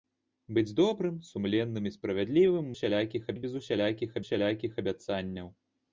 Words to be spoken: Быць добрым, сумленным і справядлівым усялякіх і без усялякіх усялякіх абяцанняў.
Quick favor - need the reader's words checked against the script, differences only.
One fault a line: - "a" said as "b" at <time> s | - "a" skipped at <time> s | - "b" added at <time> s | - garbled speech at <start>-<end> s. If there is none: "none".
none